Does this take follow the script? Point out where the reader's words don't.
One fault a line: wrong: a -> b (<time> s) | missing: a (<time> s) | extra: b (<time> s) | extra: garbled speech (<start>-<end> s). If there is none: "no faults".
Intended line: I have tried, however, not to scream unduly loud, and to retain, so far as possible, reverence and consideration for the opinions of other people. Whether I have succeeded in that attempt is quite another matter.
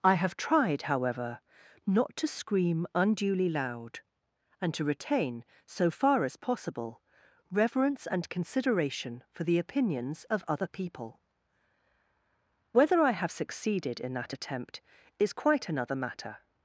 no faults